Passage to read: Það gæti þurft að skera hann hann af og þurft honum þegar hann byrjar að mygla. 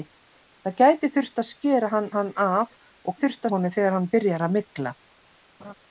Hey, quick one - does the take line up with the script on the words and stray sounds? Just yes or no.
no